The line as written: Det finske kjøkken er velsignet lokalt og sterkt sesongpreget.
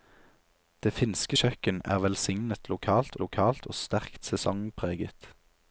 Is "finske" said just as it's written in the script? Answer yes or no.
yes